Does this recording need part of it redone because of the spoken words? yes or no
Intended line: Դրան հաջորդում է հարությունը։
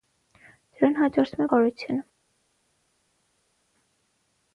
no